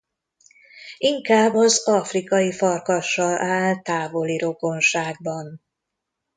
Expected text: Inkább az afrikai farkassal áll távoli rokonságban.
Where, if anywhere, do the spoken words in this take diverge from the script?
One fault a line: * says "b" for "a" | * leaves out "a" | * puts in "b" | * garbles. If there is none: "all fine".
all fine